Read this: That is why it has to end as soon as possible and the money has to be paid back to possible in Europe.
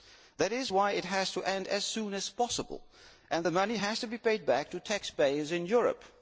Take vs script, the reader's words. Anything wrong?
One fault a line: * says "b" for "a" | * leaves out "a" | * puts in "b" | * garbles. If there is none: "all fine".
* says "taxpayers" for "possible"